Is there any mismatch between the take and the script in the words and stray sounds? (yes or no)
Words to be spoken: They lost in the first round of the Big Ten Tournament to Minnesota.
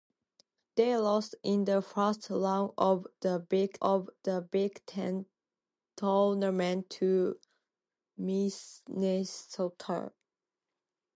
yes